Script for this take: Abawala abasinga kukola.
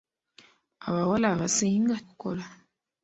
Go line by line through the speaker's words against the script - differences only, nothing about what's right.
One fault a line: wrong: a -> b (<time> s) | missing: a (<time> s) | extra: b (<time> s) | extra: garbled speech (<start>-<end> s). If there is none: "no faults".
no faults